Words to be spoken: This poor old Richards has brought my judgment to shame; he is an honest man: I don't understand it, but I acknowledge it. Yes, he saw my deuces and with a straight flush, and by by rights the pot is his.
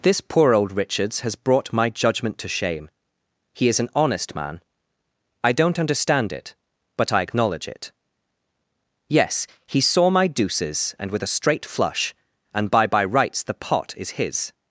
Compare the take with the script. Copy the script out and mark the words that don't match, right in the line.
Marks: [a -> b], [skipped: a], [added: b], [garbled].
This poor old Richards has brought my judgment to shame; he is an honest man: I don't understand it, but I acknowledge it. Yes, he saw my deuces and with a straight flush, and by by rights the pot is his.